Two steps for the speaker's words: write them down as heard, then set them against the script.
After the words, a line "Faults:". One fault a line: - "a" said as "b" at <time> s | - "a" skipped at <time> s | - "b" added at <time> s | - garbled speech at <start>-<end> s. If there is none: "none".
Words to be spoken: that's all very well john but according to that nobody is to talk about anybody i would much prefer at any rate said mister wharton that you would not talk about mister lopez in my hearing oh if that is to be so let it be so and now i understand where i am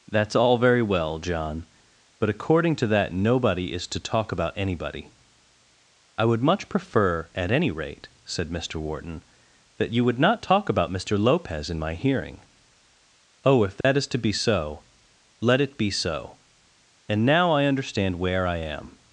that's all very well john but according to that nobody is to talk about anybody i would much prefer at any rate said mister wharton that you would not talk about mister lopez in my hearing oh if that is to be so let it be so and now i understand where i am
Faults:
none